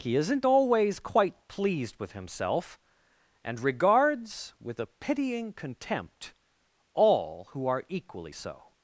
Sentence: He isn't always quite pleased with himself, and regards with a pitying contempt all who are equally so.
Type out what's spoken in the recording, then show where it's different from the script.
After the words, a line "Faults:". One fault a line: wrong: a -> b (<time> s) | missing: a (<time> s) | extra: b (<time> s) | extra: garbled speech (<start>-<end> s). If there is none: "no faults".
He isn't always quite pleased with himself, and regards with a pitying contempt all who are equally so.
Faults:
no faults